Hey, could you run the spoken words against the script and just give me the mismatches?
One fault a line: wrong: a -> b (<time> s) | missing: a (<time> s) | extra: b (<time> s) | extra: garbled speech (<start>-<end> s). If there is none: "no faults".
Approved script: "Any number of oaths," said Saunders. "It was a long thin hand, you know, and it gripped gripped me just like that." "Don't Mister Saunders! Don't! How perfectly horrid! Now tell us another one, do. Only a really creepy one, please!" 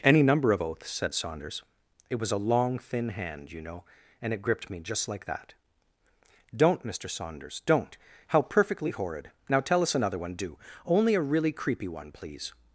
missing: gripped (4.7 s)